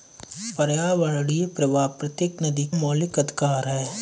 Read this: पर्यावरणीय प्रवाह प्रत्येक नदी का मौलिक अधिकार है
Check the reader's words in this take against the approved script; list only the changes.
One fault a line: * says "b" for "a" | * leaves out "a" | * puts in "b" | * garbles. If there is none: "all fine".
* leaves out "का"